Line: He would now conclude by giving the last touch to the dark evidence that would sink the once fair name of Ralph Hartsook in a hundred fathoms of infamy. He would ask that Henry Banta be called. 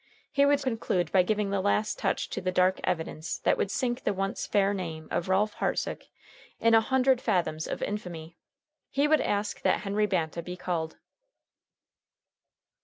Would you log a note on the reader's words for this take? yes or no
yes